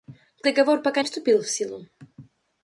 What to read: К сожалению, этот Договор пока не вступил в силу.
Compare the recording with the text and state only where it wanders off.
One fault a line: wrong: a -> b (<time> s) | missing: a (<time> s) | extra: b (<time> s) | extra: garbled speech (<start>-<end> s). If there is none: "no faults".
missing: сожалению этот (0.5 s)
missing: не (1.0 s)